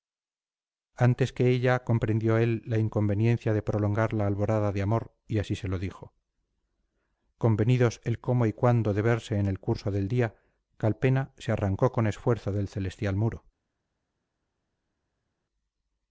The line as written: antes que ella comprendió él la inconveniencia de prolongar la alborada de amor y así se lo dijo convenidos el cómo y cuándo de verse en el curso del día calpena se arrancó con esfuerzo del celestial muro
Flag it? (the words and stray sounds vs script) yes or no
no